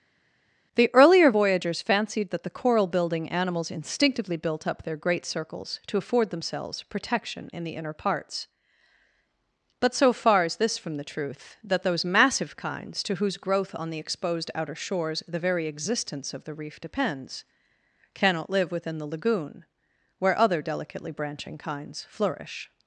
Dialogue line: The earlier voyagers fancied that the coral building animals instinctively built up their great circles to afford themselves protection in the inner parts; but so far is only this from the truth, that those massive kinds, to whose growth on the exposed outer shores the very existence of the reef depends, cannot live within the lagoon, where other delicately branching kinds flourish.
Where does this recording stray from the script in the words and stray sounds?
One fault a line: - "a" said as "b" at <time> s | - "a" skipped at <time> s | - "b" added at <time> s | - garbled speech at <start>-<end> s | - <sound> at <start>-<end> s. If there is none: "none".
- "only" skipped at 10.6 s